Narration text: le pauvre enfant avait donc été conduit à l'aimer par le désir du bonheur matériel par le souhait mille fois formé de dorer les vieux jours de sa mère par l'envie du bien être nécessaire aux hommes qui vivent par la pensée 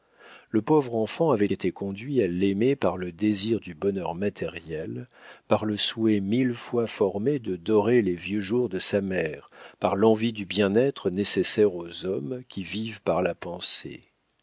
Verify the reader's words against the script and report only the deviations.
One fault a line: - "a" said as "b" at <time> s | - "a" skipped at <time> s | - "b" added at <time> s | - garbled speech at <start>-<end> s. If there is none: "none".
- "donc" skipped at 1.5 s